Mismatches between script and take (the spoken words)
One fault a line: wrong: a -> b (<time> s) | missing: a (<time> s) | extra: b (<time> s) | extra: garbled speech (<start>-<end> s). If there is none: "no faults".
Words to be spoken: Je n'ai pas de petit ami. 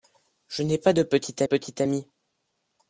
extra: petit (1.4 s)